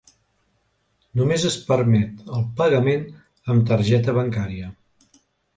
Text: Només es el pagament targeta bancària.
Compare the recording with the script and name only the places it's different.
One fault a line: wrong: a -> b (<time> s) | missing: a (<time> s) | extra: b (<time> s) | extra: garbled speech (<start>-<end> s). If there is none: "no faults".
extra: permet (1.7 s)
extra: amb (3.5 s)